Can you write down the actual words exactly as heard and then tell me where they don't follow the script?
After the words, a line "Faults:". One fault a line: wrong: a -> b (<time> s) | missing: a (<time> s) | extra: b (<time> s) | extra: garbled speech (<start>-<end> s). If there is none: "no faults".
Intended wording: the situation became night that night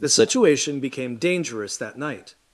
the situation became dangerous that night
Faults:
wrong: night -> dangerous (1.2 s)